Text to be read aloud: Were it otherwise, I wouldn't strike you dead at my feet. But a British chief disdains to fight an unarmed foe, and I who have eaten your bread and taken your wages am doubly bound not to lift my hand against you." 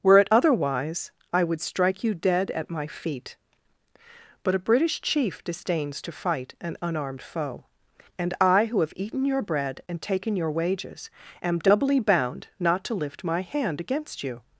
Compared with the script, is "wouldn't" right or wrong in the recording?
wrong